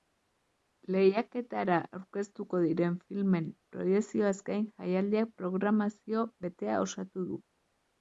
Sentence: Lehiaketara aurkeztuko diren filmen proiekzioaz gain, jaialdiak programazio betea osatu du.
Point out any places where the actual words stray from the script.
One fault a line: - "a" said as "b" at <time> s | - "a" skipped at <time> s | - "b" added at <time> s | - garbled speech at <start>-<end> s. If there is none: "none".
none